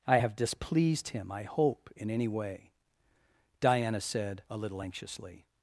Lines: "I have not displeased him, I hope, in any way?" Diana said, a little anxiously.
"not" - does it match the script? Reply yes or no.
no